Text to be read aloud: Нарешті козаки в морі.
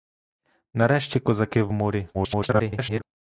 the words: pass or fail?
fail